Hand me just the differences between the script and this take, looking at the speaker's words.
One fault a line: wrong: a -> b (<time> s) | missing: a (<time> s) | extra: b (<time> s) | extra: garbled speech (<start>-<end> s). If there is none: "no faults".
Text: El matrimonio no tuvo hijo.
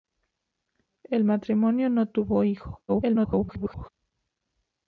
extra: garbled speech (2.9-3.9 s)